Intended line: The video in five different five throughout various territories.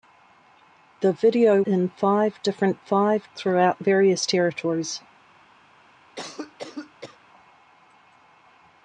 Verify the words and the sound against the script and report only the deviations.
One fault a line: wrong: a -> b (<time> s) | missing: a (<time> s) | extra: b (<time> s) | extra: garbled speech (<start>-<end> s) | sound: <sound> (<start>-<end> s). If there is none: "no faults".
sound: cough (6.2-7.2 s)